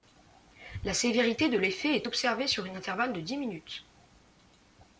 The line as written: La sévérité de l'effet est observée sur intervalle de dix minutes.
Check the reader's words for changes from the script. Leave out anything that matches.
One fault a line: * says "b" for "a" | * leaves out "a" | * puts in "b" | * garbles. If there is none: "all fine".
* puts in "un"